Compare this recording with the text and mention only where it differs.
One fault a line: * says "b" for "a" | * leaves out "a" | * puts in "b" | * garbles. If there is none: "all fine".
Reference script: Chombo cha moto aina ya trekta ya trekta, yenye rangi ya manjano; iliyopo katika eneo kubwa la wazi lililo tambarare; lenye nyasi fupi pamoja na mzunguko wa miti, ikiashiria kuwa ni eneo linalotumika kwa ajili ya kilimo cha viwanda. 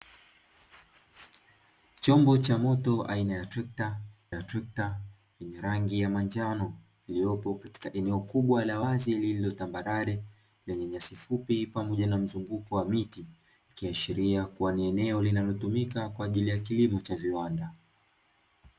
all fine